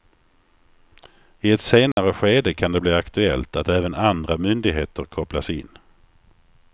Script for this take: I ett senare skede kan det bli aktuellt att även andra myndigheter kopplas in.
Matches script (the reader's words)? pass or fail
pass